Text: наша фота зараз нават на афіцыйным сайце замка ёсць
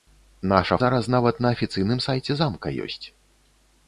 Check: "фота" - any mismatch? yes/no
yes